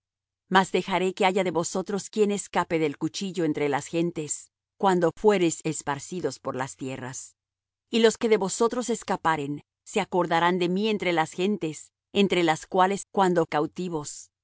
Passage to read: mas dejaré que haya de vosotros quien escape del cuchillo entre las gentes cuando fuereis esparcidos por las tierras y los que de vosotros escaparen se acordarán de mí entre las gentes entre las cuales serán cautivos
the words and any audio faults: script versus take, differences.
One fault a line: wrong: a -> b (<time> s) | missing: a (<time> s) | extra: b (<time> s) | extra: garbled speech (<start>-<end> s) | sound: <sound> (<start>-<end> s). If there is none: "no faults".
wrong: serán -> cuando (13.1 s)